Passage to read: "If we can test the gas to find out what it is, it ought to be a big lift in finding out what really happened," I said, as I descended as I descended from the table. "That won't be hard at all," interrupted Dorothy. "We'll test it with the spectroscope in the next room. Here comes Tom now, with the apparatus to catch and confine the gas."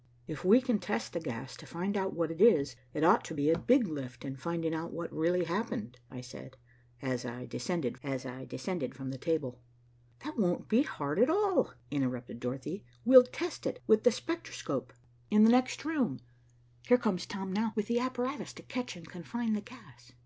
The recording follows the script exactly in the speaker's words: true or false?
true